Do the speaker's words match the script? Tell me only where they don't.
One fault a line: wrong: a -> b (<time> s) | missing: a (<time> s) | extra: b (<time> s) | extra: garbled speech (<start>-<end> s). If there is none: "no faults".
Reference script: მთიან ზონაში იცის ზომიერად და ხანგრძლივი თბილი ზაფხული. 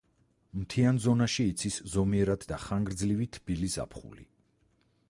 no faults